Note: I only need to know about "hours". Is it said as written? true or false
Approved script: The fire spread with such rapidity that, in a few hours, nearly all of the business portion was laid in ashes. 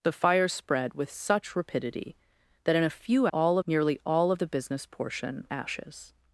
false